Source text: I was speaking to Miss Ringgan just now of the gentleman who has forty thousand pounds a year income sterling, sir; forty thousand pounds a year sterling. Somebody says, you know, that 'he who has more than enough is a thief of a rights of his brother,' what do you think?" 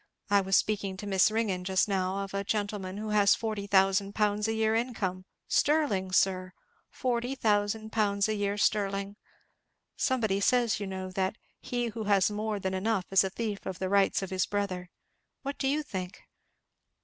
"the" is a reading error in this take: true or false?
true